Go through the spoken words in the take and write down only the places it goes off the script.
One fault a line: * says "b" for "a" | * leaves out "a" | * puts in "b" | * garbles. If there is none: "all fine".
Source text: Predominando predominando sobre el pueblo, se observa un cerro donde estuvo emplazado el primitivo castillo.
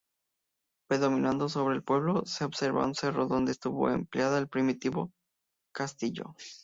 * leaves out "predominando"